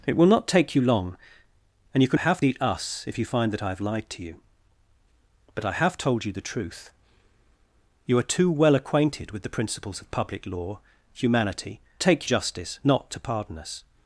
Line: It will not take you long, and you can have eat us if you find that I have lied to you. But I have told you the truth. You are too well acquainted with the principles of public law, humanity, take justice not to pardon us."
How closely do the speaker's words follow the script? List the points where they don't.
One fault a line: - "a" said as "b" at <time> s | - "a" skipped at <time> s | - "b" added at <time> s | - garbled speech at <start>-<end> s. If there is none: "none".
none